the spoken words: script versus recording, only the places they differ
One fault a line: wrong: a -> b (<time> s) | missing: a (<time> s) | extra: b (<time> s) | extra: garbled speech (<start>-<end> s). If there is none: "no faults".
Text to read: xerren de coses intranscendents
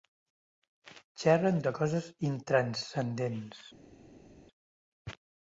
no faults